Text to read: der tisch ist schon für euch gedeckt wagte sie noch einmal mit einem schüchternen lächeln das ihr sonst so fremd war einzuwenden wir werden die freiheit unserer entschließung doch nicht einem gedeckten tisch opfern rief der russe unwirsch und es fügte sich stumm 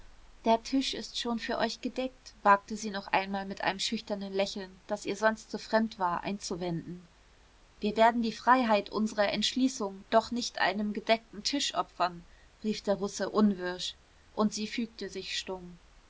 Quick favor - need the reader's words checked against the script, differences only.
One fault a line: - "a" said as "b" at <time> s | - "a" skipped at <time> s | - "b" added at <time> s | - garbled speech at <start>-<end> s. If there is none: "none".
- "es" said as "sie" at 14.5 s